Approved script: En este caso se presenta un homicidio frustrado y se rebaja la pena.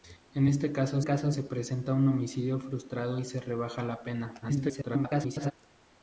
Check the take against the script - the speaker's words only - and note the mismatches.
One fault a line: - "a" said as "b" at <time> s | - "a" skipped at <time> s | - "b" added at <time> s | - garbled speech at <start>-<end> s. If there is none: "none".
- "caso" added at 1.0 s
- garbled speech at 4.4-5.5 s